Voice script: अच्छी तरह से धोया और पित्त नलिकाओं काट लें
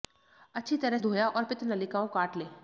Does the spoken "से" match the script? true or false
false